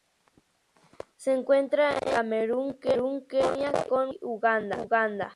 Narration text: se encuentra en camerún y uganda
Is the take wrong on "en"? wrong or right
right